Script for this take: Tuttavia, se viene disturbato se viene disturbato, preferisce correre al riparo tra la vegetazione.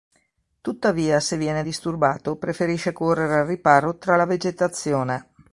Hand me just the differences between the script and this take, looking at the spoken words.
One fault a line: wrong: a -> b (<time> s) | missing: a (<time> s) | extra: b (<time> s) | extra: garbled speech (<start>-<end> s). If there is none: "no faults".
missing: se viene disturbato (2.4 s)